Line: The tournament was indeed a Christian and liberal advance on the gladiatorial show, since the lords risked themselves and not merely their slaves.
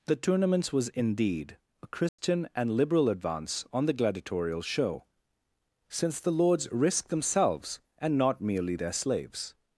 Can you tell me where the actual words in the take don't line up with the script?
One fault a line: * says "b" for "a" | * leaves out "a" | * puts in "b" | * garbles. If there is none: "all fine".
* says "tournaments" for "tournament"